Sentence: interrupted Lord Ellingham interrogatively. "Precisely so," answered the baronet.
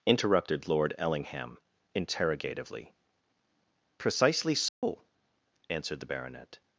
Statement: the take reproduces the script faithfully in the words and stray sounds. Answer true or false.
false